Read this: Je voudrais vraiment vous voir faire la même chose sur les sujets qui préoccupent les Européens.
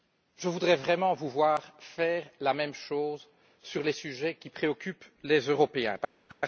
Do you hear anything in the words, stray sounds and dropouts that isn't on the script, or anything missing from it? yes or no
yes